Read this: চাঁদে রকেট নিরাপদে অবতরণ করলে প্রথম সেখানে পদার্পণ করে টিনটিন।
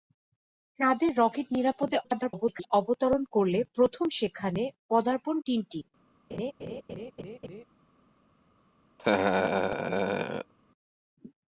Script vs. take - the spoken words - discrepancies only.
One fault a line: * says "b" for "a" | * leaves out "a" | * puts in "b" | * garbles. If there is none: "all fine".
* garbles
* leaves out "করে"